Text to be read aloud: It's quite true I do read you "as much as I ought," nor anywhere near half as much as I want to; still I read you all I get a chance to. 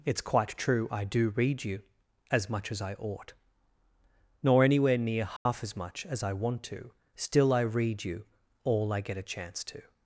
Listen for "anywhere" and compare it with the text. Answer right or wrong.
right